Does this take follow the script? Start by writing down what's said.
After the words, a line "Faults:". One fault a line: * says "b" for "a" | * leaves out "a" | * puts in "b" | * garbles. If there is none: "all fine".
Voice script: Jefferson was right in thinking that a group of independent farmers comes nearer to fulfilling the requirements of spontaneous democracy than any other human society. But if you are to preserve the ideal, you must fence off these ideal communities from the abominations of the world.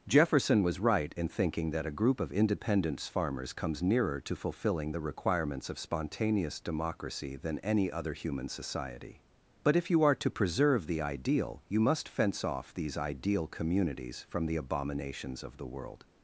Jefferson was right in thinking that a group of independence farmers comes nearer to fulfilling the requirements of spontaneous democracy than any other human society. But if you are to preserve the ideal, you must fence off these ideal communities from the abominations of the world.
Faults:
* says "independence" for "independent"